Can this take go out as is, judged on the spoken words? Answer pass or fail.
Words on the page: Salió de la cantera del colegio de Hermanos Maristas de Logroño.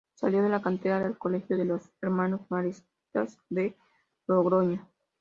fail